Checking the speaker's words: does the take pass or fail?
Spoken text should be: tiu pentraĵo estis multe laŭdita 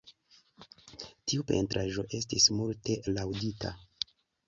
pass